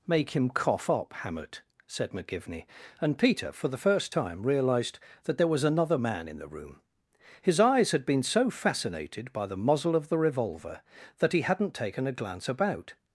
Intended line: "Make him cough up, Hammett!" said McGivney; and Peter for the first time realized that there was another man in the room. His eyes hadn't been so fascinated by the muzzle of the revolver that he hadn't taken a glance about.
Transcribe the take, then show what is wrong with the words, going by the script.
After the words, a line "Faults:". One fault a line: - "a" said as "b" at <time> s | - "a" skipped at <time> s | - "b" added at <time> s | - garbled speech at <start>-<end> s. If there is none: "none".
"Make him cough up, Hammett!" said McGivney; and Peter for the first time realized that there was another man in the room. His eyes had been so fascinated by the muzzle of the revolver that he hadn't taken a glance about.
Faults:
- "hadn't" said as "had" at 7.9 s